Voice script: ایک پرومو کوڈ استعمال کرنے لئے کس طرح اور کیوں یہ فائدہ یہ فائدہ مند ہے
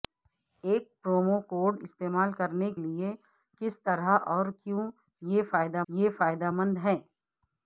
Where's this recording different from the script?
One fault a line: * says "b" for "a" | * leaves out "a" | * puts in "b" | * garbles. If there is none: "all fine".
all fine